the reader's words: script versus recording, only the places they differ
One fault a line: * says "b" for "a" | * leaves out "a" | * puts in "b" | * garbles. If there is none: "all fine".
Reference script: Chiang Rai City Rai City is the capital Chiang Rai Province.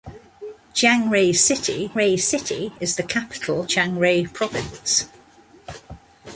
all fine